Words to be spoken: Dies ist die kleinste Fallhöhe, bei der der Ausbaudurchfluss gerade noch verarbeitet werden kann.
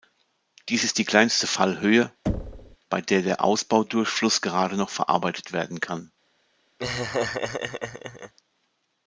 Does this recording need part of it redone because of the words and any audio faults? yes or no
yes